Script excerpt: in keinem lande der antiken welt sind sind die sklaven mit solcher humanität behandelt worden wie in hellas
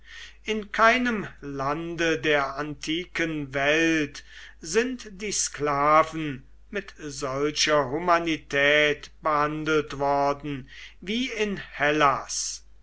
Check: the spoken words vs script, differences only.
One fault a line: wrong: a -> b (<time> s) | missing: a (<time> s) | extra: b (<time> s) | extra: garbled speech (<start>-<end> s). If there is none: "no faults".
missing: sind (5.2 s)